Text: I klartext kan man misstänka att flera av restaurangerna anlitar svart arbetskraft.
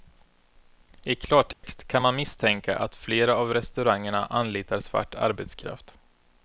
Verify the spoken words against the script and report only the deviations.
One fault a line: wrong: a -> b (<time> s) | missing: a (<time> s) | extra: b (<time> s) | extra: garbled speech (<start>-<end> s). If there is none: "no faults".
no faults